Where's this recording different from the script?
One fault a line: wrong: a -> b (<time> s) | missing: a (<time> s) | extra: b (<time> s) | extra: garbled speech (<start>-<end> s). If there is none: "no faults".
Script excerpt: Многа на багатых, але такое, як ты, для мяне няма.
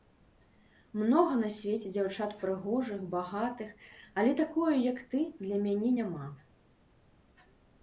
extra: свеце дзяўчат прыгожых (1.6 s)